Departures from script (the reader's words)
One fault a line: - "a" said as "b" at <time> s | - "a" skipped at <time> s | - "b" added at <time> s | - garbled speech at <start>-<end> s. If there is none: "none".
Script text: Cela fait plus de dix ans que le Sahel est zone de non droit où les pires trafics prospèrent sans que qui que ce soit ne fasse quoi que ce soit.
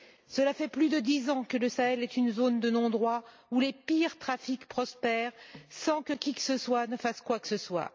- "une" added at 2.1 s